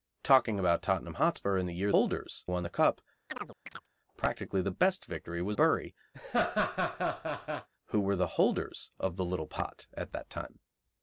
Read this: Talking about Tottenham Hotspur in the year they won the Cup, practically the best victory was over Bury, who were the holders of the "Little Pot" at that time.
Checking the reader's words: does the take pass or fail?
fail